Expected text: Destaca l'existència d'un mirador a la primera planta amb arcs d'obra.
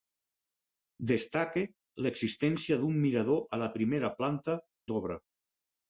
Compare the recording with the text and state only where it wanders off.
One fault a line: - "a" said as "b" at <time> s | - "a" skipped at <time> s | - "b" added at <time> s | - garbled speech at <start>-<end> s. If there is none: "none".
- "amb arcs" skipped at 4.6 s